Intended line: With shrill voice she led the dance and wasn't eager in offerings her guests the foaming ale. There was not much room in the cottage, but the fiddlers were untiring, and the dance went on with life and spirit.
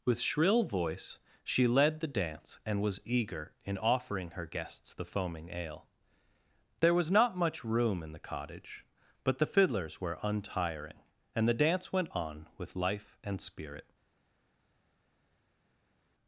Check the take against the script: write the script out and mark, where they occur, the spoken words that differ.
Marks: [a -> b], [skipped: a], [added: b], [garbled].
With shrill voice she led the dance and [wasn't -> was] eager in [offerings -> offering] her guests the foaming ale. There was not much room in the cottage, but the fiddlers were untiring, and the dance went on with life and spirit.